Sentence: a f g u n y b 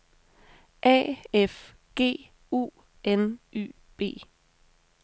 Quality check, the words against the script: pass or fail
pass